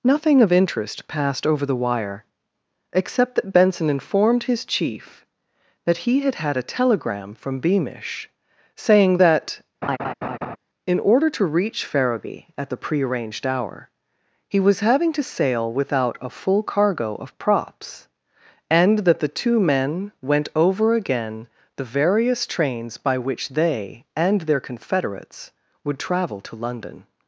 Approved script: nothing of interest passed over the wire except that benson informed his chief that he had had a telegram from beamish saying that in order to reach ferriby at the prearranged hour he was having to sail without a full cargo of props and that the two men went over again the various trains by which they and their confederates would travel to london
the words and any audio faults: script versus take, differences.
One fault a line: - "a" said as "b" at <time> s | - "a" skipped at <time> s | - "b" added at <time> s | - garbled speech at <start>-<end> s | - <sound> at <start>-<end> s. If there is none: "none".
- laugh at 9.8-10.6 s